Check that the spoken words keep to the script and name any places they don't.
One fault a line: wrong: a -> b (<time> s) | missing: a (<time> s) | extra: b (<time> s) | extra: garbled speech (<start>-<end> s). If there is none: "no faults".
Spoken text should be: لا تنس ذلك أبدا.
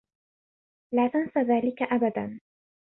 no faults